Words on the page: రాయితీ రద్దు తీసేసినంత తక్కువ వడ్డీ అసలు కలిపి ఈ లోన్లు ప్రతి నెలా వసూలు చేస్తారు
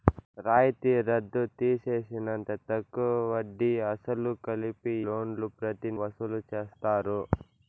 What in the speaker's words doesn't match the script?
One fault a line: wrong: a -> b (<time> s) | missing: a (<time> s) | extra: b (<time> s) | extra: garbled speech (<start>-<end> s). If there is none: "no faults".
missing: ఈ (5.0 s)
missing: నెలా (5.9 s)